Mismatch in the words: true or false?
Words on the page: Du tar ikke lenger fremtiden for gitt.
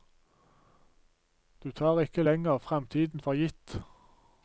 false